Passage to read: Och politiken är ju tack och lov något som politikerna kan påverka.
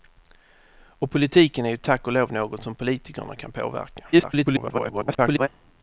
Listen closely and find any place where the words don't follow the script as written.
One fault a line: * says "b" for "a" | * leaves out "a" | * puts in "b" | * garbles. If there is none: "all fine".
* garbles